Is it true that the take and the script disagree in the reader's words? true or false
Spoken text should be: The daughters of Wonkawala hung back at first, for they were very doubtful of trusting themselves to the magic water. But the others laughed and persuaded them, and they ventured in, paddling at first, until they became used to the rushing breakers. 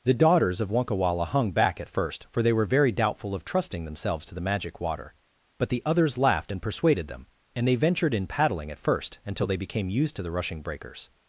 false